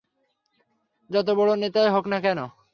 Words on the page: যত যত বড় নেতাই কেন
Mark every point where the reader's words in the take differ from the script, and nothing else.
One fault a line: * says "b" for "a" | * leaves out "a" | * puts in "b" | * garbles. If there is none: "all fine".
* leaves out "যত"
* puts in "হোক না"